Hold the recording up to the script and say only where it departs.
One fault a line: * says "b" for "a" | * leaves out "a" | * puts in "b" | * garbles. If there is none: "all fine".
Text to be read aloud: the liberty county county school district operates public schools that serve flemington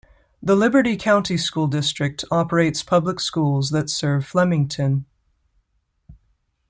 * leaves out "county"